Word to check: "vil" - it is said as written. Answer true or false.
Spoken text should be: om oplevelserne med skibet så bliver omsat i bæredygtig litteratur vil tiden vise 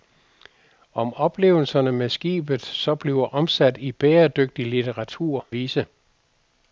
false